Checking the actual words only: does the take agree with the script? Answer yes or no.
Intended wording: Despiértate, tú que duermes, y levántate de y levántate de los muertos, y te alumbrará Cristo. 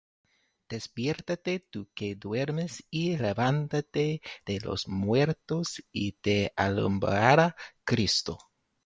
no